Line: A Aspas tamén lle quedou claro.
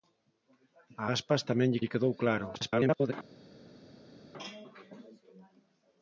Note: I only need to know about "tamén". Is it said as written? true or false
true